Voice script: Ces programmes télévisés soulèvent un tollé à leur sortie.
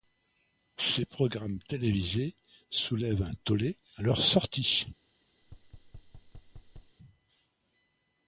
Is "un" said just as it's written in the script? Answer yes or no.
yes